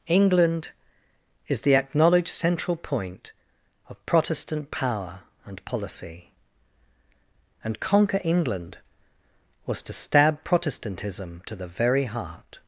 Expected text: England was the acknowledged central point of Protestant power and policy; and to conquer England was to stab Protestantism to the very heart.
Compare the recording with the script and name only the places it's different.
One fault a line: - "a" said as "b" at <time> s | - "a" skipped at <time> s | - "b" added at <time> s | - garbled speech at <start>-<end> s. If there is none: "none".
- "was" said as "is" at 1.5 s
- "to" skipped at 7.8 s